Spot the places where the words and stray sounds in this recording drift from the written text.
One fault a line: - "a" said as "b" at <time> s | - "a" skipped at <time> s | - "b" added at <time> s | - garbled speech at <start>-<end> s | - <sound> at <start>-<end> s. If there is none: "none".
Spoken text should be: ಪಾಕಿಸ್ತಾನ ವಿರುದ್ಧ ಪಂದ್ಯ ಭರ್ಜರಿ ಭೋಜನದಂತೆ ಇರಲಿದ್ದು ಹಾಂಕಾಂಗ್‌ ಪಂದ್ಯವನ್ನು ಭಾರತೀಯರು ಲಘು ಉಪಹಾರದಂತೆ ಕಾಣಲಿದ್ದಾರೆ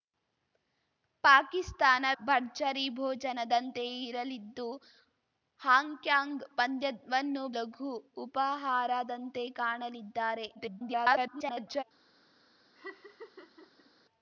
- "ವಿರುದ್ಧ ಪಂದ್ಯ" skipped at 2.0 s
- "ಭಾರತೀಯರು" skipped at 7.4 s
- garbled speech at 10.5-11.8 s
- laugh at 12.8-13.9 s